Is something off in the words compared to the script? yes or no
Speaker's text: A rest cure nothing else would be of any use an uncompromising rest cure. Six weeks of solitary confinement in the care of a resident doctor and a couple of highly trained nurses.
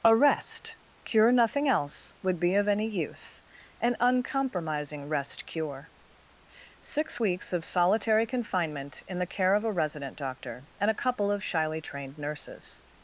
yes